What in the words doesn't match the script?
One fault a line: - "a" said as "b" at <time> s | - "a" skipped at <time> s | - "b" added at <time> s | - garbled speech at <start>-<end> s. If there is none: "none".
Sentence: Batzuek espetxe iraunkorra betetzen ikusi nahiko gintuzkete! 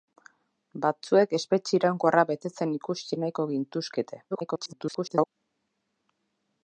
- garbled speech at 4.3-5.3 s